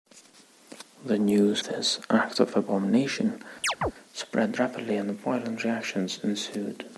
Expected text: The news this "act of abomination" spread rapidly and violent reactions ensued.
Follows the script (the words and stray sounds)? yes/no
no